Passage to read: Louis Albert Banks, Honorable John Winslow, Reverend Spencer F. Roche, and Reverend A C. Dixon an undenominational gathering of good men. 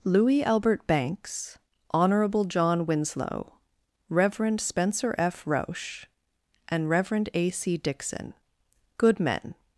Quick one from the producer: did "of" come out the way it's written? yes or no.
no